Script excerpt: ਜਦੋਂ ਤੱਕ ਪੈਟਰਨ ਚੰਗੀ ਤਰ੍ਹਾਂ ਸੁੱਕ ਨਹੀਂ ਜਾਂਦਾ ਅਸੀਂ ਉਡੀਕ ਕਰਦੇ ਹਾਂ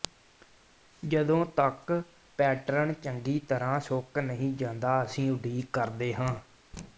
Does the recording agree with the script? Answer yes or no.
yes